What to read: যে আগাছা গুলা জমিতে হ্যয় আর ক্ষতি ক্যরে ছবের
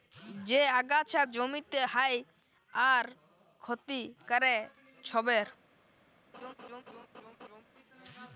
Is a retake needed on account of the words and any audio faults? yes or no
yes